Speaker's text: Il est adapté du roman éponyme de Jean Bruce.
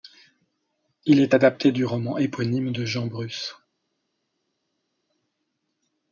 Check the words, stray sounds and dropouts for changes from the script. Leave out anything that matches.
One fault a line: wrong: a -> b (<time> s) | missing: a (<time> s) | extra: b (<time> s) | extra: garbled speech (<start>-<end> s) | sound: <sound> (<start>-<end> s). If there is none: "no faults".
no faults